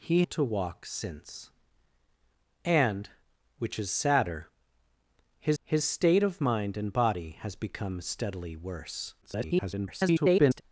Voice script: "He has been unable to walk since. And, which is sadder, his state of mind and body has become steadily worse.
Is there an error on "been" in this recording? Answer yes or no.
yes